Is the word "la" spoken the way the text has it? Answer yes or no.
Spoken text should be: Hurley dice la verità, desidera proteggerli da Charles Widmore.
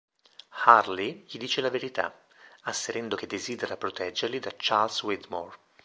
yes